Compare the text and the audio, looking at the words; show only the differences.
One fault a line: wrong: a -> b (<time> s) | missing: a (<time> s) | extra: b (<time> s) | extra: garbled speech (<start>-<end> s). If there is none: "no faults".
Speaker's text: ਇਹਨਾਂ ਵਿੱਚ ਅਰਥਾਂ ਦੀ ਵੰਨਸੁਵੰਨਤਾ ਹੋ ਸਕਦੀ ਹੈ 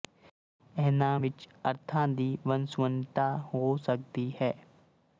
no faults